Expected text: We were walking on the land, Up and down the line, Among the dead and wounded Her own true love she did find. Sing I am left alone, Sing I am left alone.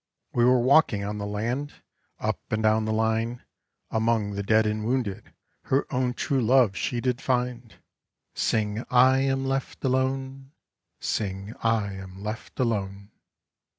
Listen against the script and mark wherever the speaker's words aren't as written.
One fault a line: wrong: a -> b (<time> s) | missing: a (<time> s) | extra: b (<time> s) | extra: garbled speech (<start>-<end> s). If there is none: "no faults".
no faults